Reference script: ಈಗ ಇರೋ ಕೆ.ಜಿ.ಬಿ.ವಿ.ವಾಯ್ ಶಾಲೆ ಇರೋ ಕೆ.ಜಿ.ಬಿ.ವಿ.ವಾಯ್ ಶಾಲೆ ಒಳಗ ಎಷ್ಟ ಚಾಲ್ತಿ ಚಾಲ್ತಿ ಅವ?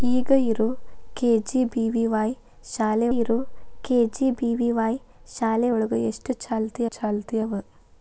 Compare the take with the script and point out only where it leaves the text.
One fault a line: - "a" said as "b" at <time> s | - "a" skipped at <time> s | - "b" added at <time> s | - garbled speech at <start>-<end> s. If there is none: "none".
none